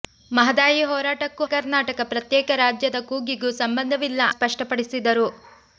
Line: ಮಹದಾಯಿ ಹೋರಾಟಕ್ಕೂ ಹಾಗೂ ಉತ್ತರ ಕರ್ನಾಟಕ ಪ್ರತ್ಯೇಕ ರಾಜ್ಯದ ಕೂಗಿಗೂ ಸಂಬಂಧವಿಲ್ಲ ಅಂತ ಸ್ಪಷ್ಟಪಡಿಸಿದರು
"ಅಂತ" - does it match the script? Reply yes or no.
no